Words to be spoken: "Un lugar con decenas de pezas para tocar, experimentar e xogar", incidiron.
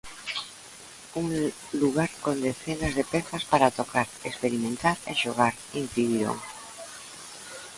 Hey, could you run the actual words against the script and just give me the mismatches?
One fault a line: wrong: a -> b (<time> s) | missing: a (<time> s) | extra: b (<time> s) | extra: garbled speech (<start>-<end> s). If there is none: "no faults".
no faults